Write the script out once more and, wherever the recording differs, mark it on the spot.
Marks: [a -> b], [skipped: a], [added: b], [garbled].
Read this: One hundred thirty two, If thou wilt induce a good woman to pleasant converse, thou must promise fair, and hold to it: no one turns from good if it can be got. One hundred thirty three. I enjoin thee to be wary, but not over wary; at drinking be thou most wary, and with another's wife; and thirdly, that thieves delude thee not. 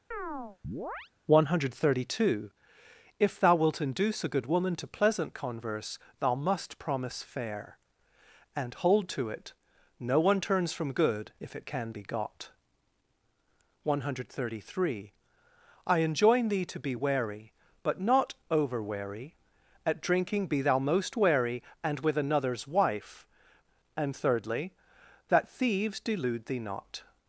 One hundred thirty two, If thou wilt induce a good woman to pleasant converse, thou must promise fair, and hold to it: no one turns from good if it can be got. One hundred thirty three. I enjoin thee to be wary, but not over wary; at drinking be thou most wary, and with another's wife; and thirdly, that thieves delude thee not.